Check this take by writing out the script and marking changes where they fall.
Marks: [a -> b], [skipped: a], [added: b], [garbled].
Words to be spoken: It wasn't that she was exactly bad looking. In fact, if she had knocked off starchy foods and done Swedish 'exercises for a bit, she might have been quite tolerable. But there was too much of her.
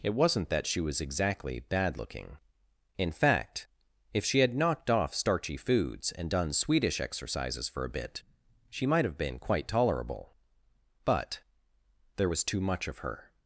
It wasn't that she was exactly bad looking. In fact, if she had knocked off starchy foods and done Swedish 'exercises for a bit, she might have been quite tolerable. But there was too much of her.